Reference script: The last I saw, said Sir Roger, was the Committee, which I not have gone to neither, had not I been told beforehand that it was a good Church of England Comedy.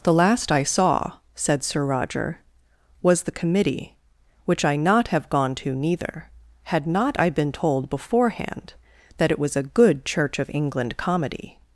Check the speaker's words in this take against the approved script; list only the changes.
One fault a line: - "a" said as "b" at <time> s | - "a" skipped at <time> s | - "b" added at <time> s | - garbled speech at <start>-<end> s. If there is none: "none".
none